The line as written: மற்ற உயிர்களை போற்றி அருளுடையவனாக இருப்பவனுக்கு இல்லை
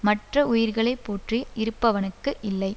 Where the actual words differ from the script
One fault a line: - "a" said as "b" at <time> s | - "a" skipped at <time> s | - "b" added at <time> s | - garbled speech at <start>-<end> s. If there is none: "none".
- "அருளுடையவனாக" skipped at 1.4 s